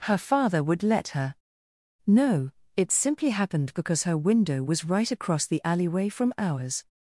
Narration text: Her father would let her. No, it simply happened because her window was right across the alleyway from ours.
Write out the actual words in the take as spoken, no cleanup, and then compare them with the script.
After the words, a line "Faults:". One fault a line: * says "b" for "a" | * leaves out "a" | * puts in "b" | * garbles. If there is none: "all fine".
Her father would let her. No, it simply happened because her window was right across the alleyway from ours.
Faults:
all fine